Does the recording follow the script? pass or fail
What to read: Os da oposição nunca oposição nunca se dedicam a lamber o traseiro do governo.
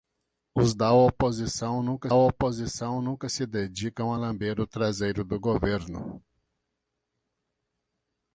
pass